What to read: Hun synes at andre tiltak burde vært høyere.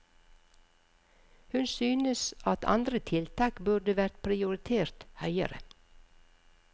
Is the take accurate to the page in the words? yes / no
no